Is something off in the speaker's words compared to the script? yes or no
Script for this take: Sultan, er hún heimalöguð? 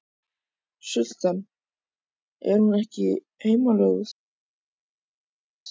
yes